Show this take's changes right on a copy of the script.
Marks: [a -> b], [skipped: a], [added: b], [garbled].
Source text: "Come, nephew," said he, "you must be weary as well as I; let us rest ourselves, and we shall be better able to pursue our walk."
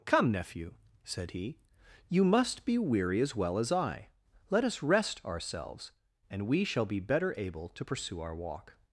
"Come, nephew," said he, "you must be weary as well as I; let us rest ourselves, and we shall be better able to pursue our walk."